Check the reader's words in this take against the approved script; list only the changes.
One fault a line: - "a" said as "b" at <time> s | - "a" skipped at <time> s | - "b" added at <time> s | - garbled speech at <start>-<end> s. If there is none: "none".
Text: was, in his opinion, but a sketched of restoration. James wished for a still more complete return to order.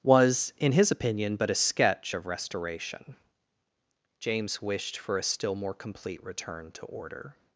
- "sketched" said as "sketch" at 1.6 s